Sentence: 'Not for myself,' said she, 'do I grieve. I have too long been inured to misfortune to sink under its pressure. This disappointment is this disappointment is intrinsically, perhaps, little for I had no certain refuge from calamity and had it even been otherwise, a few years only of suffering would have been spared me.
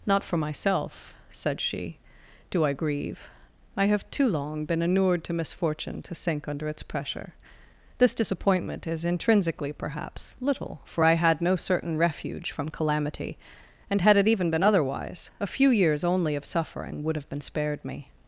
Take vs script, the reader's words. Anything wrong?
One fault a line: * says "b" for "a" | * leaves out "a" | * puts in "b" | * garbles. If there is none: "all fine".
* leaves out "this disappointment is"